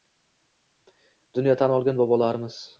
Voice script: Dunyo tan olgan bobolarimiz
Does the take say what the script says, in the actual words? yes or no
yes